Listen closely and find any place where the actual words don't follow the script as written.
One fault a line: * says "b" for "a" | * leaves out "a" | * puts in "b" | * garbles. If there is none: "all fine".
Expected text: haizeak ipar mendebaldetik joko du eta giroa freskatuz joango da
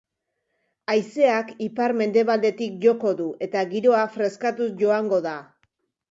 all fine